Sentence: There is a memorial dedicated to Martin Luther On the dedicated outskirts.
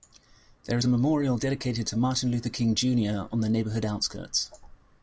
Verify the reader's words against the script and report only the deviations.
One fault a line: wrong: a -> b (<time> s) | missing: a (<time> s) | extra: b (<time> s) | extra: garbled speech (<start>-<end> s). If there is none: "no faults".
extra: King Junior (2.5 s)
wrong: dedicated -> neighborhood (3.5 s)